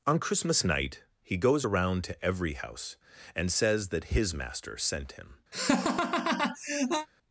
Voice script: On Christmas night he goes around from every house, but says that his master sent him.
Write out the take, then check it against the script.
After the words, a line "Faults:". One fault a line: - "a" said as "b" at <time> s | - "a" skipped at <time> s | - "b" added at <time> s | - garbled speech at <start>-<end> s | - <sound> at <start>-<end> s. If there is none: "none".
On Christmas night he goes around to every house, and says that his master sent him.
Faults:
- "from" said as "to" at 2.0 s
- "but" said as "and" at 3.3 s
- laugh at 5.5-7.1 s